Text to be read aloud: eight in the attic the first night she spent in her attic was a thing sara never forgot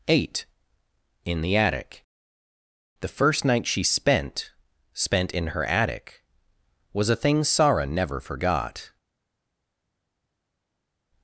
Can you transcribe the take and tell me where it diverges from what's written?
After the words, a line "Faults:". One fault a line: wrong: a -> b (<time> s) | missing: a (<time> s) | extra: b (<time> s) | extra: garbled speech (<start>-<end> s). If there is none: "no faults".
eight in the attic the first night she spent spent in her attic was a thing sara never forgot
Faults:
extra: spent (4.9 s)